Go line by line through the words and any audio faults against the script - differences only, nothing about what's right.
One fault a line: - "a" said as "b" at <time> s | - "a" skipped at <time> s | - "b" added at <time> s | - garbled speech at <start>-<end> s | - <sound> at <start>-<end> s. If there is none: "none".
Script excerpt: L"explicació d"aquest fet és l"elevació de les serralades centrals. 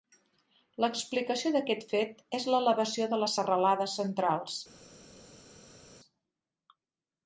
none